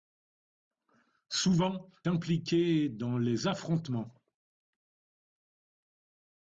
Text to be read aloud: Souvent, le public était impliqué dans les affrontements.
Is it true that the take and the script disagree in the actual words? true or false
true